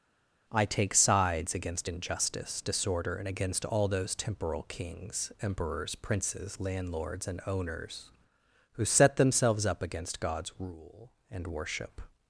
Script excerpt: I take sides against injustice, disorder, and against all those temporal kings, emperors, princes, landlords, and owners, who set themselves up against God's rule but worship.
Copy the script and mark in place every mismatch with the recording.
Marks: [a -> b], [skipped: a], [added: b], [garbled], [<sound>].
I take sides against injustice, disorder, and against all those temporal kings, emperors, princes, landlords, and owners, who set themselves up against God's rule [but -> and] worship.